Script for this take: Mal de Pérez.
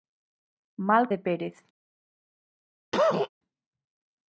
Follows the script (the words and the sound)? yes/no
no